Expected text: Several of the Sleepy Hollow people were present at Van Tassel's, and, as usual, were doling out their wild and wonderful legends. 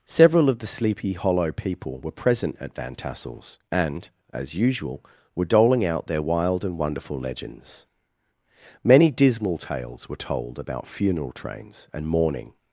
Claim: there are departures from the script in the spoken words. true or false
true